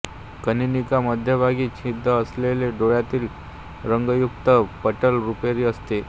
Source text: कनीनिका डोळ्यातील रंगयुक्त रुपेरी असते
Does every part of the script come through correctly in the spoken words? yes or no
no